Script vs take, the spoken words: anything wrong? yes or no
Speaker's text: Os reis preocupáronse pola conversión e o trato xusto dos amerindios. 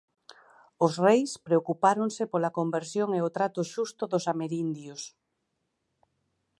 no